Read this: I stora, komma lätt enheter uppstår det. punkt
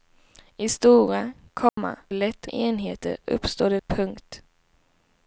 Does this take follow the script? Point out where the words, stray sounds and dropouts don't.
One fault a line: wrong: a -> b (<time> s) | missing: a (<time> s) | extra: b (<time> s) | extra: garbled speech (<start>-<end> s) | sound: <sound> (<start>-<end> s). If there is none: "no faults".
sound: dropout (1.7-1.8 s)